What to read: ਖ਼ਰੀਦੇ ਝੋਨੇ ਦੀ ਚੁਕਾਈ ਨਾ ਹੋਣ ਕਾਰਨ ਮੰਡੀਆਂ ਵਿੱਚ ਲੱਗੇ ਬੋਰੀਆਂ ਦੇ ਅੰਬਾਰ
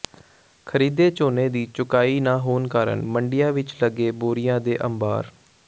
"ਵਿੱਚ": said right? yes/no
yes